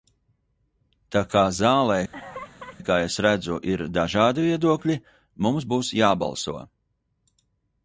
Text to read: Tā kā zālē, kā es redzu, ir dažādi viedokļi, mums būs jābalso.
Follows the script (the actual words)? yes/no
yes